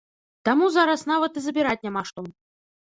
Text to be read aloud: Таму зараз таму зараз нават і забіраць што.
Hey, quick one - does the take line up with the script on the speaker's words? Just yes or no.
no